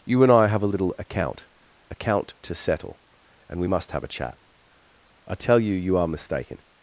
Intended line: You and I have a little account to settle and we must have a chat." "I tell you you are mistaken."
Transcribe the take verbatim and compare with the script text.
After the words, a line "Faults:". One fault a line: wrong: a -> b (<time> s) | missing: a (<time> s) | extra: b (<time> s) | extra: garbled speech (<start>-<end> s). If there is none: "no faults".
You and I have a little account account to settle and we must have a chat." "I tell you you are mistaken."
Faults:
extra: account (1.9 s)